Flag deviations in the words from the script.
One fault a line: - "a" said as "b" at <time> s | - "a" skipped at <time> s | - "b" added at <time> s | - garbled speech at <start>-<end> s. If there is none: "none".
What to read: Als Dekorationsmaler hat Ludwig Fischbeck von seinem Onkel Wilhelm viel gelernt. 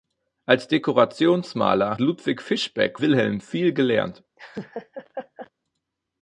- "hat" skipped at 2.0 s
- "von seinem Onkel" skipped at 3.0 s